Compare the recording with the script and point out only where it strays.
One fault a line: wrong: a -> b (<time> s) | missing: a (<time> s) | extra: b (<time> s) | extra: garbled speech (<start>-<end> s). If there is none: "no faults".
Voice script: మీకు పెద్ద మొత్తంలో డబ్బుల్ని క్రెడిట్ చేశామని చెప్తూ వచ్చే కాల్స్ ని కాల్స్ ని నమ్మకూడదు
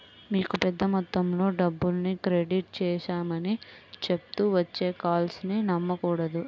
missing: కాల్స్ ని (5.6 s)